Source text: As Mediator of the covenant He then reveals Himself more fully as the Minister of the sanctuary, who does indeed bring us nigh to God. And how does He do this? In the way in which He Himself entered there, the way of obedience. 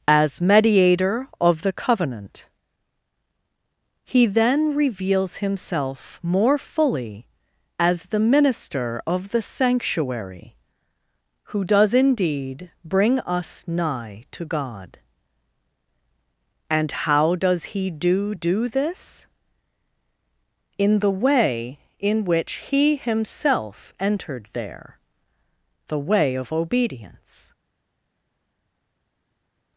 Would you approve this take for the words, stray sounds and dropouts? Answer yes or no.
no